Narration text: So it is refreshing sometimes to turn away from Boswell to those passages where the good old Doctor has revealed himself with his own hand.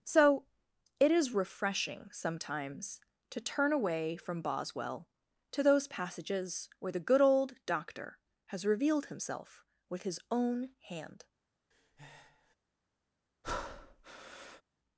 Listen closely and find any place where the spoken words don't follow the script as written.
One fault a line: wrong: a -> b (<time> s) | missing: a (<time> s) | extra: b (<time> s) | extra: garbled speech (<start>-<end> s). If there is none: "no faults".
no faults